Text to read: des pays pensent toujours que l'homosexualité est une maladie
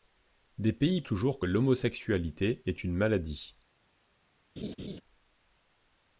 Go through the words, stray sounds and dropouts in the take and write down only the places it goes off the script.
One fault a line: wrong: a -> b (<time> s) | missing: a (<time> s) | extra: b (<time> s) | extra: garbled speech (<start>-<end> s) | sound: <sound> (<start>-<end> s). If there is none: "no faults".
missing: pensent (1.0 s)
sound: laugh (4.6-5.0 s)